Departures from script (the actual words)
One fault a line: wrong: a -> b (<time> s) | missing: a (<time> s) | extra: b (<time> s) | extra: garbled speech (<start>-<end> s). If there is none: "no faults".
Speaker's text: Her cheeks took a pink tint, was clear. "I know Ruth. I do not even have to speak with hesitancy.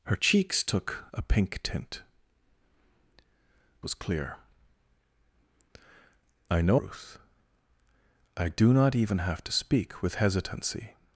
no faults